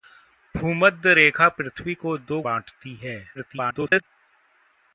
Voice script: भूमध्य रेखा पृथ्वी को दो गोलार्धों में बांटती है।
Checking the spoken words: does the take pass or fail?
fail